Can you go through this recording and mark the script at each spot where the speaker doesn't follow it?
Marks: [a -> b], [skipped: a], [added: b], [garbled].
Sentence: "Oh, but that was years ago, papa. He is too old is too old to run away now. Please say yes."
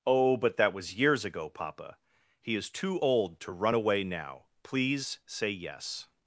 "Oh, but that was years ago, papa. He is too old [skipped: is too old] to run away now. Please say yes."